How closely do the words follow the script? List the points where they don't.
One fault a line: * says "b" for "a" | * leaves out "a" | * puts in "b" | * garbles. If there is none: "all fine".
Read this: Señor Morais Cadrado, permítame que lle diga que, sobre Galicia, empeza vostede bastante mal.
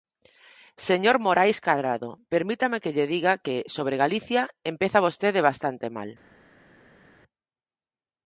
all fine